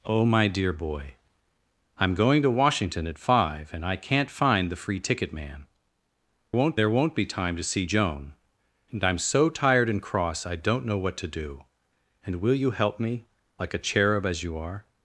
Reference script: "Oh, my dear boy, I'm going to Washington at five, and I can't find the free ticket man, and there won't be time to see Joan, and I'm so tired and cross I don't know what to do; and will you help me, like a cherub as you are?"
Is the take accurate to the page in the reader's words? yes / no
no